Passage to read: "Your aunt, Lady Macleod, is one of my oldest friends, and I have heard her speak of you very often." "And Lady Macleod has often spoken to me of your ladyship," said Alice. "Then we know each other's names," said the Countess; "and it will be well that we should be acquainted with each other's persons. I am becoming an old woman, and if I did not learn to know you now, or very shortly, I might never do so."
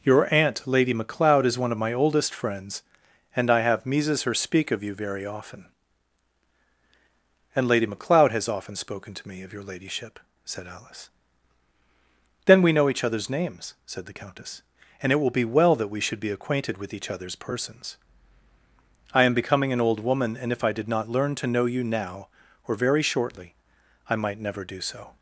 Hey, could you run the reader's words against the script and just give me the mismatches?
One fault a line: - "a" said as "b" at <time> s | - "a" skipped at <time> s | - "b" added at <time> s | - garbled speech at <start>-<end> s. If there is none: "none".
- "heard" said as "mises" at 3.9 s